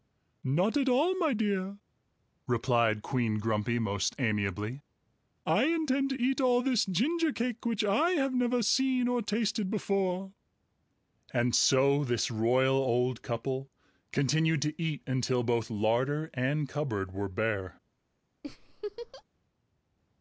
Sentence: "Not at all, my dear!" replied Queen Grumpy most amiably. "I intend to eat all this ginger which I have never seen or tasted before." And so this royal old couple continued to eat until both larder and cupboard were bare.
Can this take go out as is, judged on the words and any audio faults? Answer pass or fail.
fail